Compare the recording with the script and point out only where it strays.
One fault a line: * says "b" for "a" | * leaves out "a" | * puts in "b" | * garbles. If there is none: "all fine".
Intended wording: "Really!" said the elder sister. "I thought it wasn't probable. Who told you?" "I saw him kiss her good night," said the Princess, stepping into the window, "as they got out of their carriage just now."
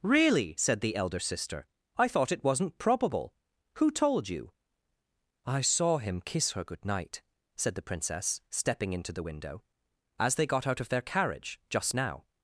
all fine